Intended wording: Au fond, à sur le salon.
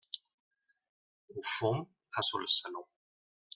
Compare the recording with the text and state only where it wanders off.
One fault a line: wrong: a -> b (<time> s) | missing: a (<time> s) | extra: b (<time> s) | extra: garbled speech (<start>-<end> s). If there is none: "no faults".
no faults